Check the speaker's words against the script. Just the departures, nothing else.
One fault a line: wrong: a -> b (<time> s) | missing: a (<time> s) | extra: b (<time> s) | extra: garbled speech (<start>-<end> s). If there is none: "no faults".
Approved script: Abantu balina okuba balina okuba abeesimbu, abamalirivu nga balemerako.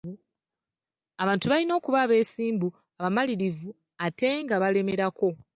missing: balina okuba (2.0 s)
extra: ate (4.0 s)